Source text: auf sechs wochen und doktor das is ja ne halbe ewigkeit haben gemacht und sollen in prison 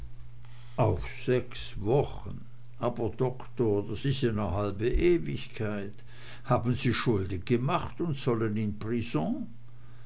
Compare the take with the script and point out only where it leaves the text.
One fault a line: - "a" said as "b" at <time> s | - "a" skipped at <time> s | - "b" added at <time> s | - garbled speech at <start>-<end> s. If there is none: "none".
- "und" said as "aber" at 2.8 s
- "sie schulden" added at 6.7 s